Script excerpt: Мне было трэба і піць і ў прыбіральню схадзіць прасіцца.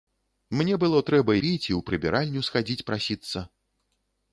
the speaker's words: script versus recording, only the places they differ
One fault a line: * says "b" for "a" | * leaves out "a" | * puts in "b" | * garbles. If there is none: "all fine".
* leaves out "і"